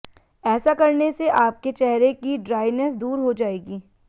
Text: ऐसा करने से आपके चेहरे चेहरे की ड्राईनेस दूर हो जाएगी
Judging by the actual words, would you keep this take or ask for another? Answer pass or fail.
fail